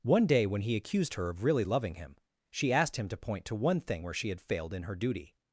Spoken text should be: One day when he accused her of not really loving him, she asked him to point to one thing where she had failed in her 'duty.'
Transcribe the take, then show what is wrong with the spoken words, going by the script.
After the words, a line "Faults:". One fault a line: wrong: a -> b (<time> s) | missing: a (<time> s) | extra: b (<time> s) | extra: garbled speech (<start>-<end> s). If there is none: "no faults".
One day when he accused her of really loving him, she asked him to point to one thing where she had failed in her 'duty.'
Faults:
missing: not (1.4 s)